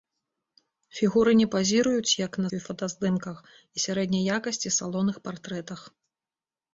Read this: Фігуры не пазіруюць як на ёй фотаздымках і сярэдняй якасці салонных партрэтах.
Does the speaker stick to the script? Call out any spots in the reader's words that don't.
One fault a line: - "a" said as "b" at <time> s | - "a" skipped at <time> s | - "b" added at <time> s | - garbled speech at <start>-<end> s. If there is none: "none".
none